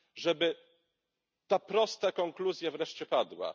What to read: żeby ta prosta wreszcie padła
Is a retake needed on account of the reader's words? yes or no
yes